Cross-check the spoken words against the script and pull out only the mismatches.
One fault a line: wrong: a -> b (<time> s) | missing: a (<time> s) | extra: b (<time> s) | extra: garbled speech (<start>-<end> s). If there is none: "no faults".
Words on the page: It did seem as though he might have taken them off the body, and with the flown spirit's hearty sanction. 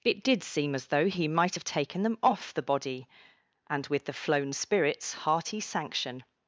no faults